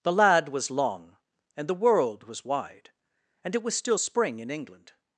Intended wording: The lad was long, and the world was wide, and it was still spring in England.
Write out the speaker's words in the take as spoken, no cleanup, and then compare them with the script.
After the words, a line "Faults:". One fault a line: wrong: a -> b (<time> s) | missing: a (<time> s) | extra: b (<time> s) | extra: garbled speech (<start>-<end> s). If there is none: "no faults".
The lad was long, and the world was wide, and it was still spring in England.
Faults:
no faults